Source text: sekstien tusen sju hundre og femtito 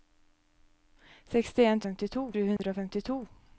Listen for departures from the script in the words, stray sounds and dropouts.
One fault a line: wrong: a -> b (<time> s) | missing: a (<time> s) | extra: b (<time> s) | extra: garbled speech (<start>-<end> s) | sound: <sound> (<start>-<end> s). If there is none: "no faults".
wrong: tusen -> femtito (1.9 s)
sound: dropout (2.6-2.6 s)